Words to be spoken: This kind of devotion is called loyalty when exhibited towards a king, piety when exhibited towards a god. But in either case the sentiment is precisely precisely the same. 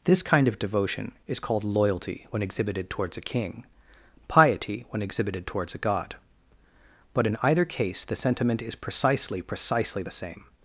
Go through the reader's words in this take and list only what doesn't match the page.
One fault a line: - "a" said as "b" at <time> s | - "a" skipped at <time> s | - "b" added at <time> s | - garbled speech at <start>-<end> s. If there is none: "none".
none